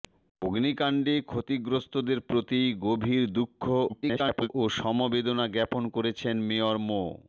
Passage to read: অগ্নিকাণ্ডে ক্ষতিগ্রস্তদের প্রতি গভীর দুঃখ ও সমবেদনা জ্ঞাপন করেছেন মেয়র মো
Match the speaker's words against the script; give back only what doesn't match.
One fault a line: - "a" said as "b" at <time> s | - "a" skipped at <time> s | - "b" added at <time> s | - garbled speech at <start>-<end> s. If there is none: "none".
- garbled speech at 3.9-4.5 s